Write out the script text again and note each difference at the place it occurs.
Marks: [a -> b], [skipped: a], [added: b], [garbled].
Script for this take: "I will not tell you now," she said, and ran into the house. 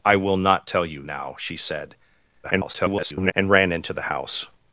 "I will not tell you now," she said, [garbled] and ran into the house.